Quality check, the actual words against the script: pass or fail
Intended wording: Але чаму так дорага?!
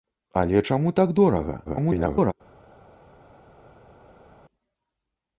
fail